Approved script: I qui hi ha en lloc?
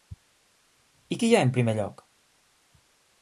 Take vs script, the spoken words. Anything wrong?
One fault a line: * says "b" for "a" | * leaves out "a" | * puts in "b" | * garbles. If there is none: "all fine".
* puts in "primer"